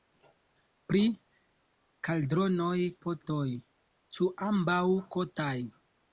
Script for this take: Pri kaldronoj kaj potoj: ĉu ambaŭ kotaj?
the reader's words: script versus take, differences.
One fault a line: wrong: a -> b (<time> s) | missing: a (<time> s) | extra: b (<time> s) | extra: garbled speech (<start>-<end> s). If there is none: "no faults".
missing: kaj (2.8 s)